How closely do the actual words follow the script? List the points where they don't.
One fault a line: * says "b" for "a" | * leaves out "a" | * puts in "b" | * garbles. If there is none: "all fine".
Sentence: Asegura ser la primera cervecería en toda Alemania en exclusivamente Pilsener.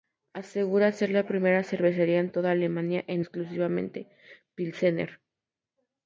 all fine